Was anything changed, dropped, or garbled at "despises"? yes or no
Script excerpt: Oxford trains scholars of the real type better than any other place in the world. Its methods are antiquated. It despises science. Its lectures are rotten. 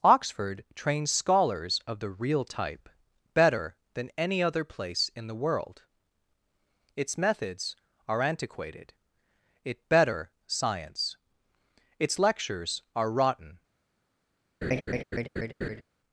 yes